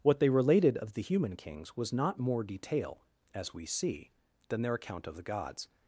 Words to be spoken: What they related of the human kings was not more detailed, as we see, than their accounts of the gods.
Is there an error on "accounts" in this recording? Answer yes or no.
yes